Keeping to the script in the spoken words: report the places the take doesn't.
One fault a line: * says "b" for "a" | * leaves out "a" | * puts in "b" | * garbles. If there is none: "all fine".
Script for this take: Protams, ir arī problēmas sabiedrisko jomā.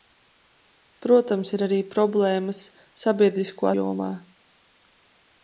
all fine